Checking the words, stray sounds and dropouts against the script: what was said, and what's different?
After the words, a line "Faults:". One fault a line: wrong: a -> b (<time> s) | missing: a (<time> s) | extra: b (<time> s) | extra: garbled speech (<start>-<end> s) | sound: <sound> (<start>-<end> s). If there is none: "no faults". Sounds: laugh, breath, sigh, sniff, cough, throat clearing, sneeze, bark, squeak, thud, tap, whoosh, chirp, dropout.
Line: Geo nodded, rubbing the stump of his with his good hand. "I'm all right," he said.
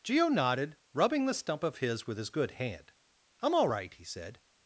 Geo nodded, rubbing the stump of his with his good hand. "I'm all right," he said.
Faults:
no faults